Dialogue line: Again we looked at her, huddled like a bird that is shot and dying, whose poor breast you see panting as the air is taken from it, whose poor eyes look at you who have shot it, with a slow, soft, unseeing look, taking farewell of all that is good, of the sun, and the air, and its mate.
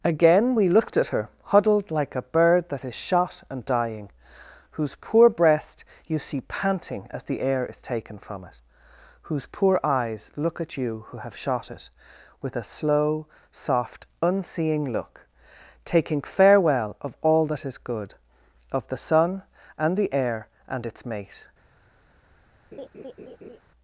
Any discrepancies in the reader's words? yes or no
no